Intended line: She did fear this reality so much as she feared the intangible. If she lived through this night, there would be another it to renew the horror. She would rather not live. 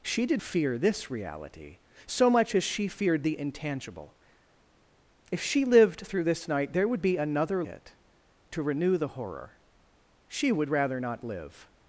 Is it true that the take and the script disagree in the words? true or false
false